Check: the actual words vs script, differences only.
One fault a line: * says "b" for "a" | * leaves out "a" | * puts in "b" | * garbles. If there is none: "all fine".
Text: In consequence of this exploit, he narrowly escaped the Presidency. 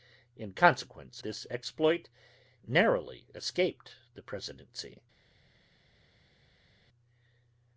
* leaves out "of"
* leaves out "he"